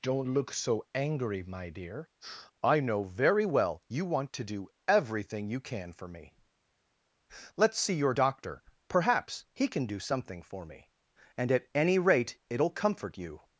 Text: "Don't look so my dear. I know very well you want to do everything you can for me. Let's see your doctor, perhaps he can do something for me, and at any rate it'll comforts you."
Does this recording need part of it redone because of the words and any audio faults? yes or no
yes